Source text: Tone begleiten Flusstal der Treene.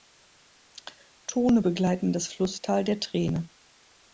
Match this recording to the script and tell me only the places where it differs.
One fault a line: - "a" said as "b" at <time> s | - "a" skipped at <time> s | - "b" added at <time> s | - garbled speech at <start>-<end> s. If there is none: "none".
- "das" added at 2.1 s